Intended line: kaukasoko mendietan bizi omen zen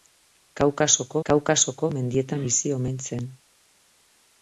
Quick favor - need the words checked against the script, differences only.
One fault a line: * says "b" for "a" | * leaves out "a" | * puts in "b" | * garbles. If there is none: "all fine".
* puts in "kaukasoko"